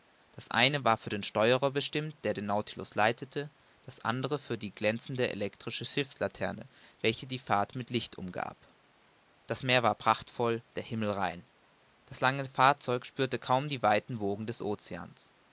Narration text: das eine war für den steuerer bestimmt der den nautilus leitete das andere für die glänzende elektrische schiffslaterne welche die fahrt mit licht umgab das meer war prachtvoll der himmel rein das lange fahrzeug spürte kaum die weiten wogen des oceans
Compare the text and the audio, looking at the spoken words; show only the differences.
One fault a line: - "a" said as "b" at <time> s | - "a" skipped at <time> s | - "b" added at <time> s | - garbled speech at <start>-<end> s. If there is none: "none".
none